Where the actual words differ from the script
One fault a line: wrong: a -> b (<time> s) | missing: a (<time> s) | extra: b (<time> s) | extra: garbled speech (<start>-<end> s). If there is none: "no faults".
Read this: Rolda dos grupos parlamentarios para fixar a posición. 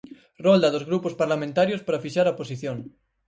no faults